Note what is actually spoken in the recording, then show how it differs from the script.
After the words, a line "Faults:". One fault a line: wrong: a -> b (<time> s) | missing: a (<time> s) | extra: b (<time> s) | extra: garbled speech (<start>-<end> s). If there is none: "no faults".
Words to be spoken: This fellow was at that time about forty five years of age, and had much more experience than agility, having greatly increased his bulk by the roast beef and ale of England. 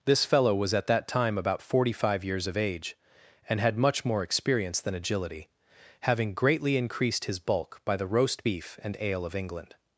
This fellow was at that time about forty five years of age, and had much more experience than agility, having greatly increased his bulk by the roast beef and ale of England.
Faults:
no faults